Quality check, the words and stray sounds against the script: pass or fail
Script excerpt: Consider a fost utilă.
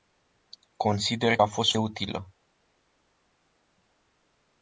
pass